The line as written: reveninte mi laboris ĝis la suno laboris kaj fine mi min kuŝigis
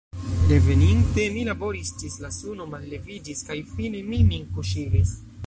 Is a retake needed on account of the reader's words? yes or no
yes